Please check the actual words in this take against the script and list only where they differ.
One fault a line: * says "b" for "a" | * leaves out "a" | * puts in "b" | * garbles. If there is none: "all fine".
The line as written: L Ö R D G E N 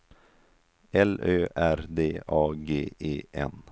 * puts in "A"